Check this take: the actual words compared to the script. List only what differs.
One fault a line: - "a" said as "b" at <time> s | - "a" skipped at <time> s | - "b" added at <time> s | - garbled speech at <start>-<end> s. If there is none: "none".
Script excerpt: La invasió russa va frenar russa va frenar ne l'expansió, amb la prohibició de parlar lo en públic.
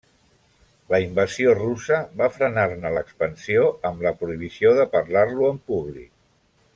- "russa va frenar" skipped at 2.6 s